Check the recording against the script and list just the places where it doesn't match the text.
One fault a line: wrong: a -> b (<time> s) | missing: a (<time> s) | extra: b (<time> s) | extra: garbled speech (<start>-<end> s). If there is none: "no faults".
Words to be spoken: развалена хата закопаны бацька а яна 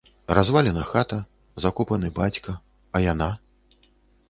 no faults